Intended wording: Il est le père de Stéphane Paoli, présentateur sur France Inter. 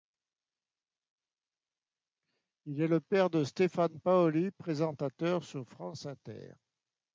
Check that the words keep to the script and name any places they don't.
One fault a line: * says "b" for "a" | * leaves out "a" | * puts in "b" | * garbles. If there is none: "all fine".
all fine